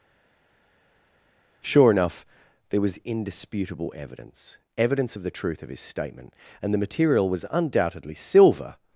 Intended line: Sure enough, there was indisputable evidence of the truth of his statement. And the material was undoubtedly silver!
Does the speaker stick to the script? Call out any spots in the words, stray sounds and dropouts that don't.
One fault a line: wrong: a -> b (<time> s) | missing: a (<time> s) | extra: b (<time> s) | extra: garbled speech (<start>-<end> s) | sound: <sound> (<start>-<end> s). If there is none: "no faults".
extra: evidence (4.8 s)